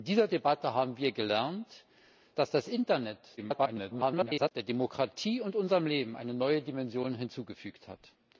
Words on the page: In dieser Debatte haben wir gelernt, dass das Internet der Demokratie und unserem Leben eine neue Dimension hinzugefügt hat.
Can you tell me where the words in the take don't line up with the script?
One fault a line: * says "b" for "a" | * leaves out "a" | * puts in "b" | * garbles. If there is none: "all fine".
* garbles